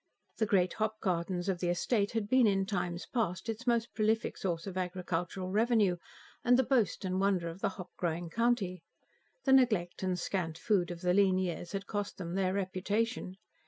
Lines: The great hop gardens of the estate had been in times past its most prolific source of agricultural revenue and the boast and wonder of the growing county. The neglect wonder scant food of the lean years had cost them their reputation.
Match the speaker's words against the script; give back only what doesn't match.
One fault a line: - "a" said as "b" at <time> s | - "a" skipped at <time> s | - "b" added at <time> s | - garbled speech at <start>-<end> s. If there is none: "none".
- "hop" added at 7.8 s
- "wonder" said as "and" at 10.0 s